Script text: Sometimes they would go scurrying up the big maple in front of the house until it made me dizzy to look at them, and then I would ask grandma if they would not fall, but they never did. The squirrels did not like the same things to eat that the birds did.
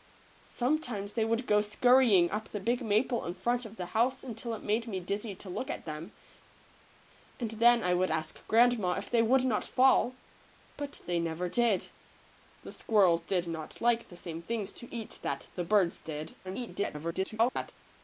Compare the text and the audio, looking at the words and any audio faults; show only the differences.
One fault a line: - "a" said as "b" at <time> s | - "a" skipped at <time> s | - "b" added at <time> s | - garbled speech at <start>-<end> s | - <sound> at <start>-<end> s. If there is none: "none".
- garbled speech at 16.4-17.7 s